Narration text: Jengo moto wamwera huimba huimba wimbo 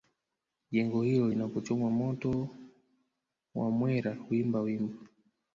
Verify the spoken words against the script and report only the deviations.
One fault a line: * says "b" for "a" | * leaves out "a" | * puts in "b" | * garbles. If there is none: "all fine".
* puts in "hilo linapochomwa"
* leaves out "huimba"